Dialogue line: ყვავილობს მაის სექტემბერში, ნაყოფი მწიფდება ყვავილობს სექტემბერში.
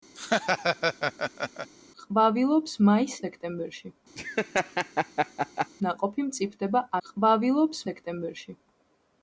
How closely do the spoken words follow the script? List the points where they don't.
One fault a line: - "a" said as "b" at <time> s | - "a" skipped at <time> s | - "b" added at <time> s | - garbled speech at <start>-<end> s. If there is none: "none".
none